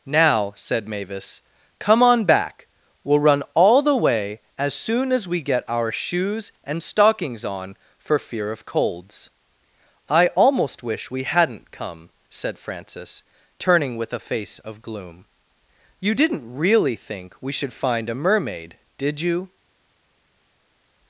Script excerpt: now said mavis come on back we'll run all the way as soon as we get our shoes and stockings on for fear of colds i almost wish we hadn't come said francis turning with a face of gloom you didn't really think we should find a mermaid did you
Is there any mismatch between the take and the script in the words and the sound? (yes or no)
no